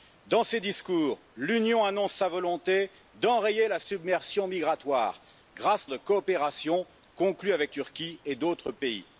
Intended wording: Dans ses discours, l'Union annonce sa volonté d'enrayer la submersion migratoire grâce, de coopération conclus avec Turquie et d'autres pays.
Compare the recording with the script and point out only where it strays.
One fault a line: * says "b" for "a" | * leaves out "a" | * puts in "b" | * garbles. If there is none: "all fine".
all fine